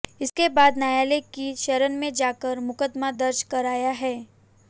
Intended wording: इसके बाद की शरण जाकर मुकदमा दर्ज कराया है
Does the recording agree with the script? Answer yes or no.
no